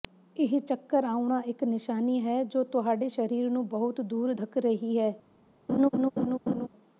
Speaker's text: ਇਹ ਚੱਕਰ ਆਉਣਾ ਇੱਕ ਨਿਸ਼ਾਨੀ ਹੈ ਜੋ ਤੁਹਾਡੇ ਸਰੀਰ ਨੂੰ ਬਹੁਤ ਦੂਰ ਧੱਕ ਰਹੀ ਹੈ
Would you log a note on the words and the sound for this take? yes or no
yes